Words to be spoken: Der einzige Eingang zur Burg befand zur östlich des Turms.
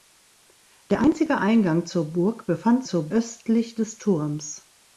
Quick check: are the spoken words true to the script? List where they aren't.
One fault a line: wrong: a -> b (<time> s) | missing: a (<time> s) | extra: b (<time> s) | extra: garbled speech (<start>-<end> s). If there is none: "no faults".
no faults